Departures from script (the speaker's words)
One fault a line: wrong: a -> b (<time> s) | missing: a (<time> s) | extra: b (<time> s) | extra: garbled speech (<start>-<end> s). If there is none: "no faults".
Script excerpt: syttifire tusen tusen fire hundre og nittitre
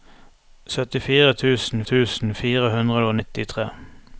no faults